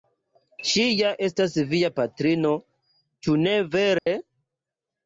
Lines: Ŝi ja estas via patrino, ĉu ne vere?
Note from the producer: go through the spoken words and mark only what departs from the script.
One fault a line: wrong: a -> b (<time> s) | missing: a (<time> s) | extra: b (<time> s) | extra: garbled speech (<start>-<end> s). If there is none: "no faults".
no faults